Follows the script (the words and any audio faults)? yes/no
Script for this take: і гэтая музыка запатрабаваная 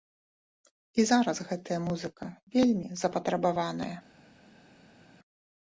no